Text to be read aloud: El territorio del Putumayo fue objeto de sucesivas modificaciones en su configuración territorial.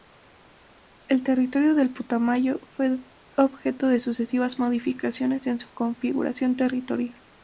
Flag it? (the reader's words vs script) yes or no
no